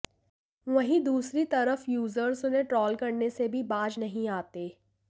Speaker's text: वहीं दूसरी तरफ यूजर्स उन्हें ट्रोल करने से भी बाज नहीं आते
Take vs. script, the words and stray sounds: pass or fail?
pass